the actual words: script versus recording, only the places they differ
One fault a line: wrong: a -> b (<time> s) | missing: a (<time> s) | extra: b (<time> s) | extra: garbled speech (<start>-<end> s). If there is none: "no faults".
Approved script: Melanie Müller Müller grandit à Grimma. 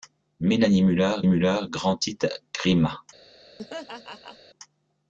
no faults